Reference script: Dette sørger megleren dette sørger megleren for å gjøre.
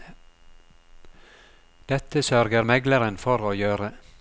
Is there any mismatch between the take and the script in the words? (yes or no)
yes